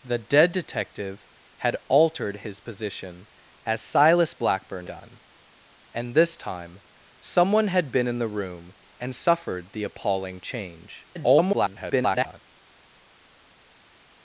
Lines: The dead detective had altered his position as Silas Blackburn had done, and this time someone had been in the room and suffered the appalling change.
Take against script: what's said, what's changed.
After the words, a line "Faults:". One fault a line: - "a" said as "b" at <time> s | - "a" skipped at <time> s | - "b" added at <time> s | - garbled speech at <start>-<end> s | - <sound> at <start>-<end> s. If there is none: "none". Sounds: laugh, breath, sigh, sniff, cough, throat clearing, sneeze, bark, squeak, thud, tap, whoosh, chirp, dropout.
The dead detective had altered his position as Silas Blackburn done, and this time someone had been in the room and suffered the appalling change. [garbled]
Faults:
- "had" skipped at 4.9 s
- garbled speech at 11.1-12.4 s